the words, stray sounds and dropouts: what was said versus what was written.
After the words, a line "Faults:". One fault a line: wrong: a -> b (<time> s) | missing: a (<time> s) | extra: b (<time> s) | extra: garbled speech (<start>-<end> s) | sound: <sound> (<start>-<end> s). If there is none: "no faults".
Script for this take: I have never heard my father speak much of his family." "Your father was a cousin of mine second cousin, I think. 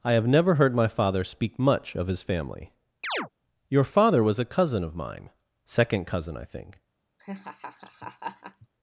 I have never heard my father speak much of his family." "Your father was a cousin of mine second cousin, I think.
Faults:
sound: chirp (3.0-3.3 s)
sound: laugh (7.2-8.7 s)